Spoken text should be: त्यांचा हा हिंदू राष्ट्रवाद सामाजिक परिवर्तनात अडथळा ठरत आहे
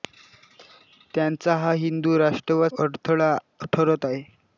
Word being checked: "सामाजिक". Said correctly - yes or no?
no